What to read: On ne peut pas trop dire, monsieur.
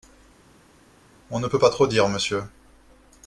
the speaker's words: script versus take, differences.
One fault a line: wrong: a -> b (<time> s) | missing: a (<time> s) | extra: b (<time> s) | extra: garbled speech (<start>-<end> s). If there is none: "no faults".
no faults